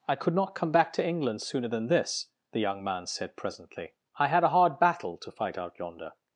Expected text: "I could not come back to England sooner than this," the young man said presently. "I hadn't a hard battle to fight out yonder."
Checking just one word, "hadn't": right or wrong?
wrong